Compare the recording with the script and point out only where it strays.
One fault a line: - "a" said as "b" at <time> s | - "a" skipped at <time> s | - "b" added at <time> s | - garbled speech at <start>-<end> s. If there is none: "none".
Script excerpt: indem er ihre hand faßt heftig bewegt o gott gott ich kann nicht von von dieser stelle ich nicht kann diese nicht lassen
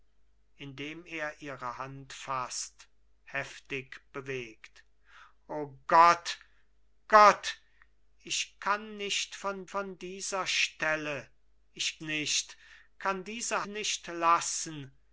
none